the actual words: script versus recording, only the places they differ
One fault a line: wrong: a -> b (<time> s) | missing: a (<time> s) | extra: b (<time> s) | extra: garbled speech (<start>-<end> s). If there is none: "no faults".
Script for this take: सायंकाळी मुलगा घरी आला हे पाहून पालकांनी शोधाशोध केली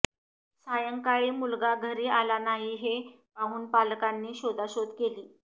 extra: नाही (2.4 s)